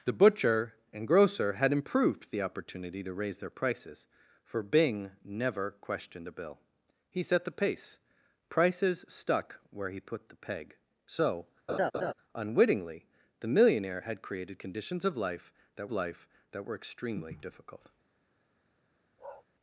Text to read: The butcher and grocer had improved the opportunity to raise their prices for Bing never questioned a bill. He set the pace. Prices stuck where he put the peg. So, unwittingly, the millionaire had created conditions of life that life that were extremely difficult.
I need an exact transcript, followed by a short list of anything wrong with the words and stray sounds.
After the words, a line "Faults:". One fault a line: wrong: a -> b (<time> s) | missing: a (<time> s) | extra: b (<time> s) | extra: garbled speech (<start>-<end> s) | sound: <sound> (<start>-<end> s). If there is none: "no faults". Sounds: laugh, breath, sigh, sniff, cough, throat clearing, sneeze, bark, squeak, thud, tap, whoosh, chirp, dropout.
The butcher and grocer had improved the opportunity to raise their prices for Bing never questioned a bill. He set the pace. Prices stuck where he put the peg. So, unwittingly, the millionaire had created conditions of life that life that were extremely difficult.
Faults:
sound: laugh (11.7-12.1 s)
sound: bark (19.2-19.4 s)